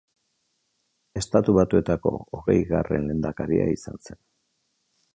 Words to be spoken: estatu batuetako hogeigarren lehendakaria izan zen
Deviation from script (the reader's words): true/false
false